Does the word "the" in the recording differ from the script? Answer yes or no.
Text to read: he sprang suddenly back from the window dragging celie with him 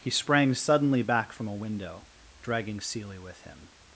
yes